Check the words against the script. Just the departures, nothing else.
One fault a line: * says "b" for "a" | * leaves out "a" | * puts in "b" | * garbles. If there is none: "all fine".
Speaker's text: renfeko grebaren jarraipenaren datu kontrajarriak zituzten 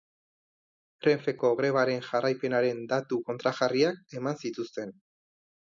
* puts in "eman"